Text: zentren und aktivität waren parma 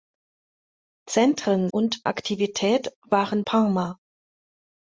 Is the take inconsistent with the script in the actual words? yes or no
no